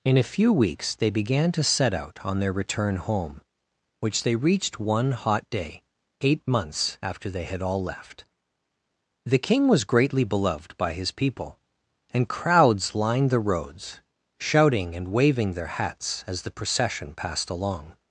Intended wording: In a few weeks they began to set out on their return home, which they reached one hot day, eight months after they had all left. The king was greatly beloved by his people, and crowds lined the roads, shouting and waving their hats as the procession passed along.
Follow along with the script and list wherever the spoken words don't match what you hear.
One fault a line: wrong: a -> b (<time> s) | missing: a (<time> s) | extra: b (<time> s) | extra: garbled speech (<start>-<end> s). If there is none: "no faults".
no faults